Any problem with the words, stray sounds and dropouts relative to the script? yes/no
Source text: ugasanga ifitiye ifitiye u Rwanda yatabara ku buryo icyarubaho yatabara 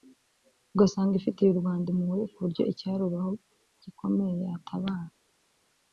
yes